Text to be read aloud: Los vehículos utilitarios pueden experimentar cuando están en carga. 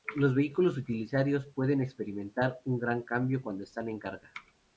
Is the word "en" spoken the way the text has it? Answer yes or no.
yes